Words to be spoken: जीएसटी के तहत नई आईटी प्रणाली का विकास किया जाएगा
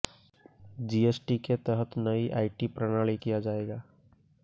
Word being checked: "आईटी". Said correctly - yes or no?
yes